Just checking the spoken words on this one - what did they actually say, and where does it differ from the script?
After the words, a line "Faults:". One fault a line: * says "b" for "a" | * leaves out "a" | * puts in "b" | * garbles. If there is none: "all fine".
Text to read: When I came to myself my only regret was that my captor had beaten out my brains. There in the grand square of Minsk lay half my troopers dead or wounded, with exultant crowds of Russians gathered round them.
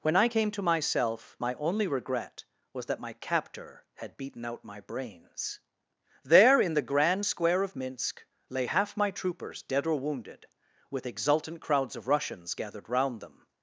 When I came to myself my only regret was that my captor had beaten out my brains. There in the grand square of Minsk lay half my troopers dead or wounded, with exultant crowds of Russians gathered round them.
Faults:
all fine